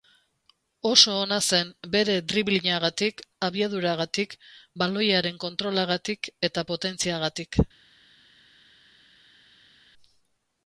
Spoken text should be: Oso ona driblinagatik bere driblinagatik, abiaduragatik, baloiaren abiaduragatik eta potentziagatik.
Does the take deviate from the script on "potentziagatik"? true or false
false